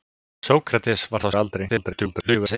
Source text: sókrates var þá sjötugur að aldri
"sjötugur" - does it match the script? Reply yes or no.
no